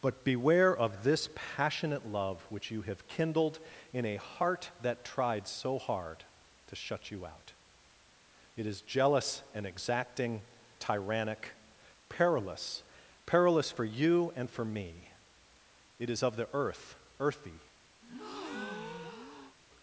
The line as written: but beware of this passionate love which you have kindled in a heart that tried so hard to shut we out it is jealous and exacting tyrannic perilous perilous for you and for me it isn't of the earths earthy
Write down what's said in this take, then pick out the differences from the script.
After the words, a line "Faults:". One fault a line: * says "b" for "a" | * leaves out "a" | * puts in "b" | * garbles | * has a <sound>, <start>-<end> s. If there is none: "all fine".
but beware of this passionate love which you have kindled in a heart that tried so hard to shut you out it is jealous and exacting tyrannic perilous perilous for you and for me it is of the earth earthy
Faults:
* says "you" for "we"
* says "is" for "isn't"
* says "earth" for "earths"
* has a breath, 18.0-19.6 s